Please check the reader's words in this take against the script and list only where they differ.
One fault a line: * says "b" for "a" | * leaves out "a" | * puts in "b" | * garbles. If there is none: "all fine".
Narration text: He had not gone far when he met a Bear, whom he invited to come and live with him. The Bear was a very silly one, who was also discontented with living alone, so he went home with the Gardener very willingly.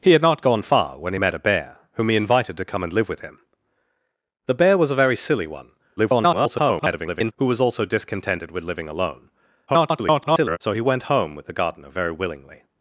* garbles
* garbles